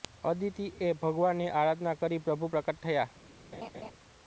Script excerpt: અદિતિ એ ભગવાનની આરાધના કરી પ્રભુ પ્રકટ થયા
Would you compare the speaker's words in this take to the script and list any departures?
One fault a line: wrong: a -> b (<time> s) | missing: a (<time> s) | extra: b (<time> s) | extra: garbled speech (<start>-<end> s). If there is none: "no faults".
no faults